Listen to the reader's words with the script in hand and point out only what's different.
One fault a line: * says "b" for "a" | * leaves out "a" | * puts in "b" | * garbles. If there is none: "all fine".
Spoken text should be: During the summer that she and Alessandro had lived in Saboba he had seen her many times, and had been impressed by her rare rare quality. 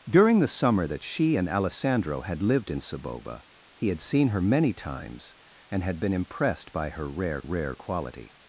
all fine